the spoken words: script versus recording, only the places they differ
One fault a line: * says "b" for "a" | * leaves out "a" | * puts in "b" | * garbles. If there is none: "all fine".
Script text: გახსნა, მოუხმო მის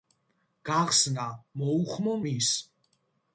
all fine